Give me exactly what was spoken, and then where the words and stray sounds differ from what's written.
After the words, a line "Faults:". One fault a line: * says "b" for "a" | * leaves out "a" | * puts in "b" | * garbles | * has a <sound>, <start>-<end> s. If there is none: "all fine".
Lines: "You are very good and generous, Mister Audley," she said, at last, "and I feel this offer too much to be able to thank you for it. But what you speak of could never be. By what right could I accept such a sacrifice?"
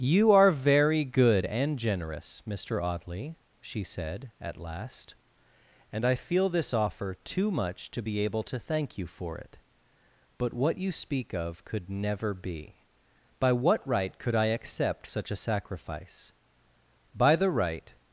"You are very good and generous, Mister Audley," she said, at last, "and I feel this offer too much to be able to thank you for it. But what you speak of could never be. By what right could I accept such a sacrifice?" "By the right
Faults:
* puts in "By the right"